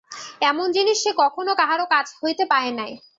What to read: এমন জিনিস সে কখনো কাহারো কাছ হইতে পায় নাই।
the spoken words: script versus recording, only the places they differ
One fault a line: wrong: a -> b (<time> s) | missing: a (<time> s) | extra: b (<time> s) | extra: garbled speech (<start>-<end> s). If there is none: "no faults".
no faults